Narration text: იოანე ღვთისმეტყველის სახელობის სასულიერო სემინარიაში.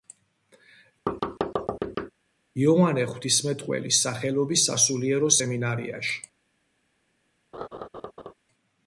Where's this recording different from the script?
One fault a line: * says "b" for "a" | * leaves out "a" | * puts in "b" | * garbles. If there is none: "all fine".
all fine